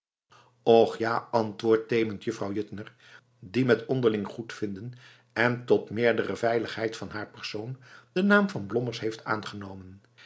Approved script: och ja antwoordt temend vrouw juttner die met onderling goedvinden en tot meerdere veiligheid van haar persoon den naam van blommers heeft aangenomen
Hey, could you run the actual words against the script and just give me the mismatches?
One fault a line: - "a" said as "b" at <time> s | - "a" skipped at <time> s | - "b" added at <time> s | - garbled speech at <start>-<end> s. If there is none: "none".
none